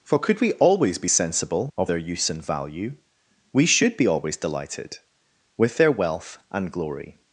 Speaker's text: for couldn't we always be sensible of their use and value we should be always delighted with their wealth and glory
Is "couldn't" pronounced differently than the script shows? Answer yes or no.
yes